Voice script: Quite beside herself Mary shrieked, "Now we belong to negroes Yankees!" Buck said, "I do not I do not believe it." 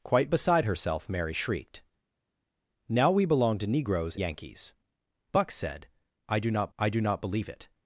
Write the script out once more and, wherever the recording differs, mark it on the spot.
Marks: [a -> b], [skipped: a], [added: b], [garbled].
Quite beside herself Mary shrieked, "Now we belong to negroes Yankees!" Buck said, "I do not I do not believe it."